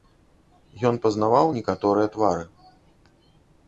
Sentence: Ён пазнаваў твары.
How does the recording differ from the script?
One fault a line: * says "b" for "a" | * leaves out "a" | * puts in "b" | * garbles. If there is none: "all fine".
* puts in "некаторыя"